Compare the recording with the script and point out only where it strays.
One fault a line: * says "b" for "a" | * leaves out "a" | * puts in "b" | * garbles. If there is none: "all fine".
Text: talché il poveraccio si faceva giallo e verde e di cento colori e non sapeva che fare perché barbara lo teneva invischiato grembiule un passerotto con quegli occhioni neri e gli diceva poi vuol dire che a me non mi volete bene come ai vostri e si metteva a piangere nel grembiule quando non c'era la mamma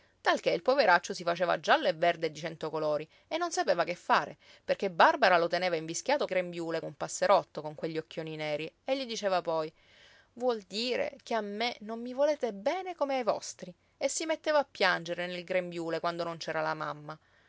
all fine